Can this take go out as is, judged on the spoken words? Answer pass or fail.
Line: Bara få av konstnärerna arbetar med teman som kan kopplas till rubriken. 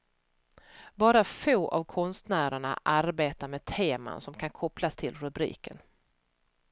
pass